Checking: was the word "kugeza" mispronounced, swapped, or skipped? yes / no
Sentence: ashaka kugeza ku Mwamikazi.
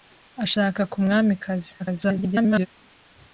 yes